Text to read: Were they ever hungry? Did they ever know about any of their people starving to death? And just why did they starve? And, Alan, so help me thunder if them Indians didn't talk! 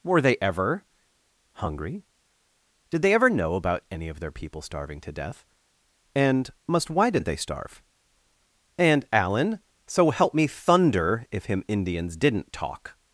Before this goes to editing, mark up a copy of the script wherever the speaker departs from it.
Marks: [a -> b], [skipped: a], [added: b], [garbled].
Were they ever hungry? Did they ever know about any of their people starving to death? And [just -> must] why did they starve? And, Alan, so help me thunder if [them -> him] Indians didn't talk!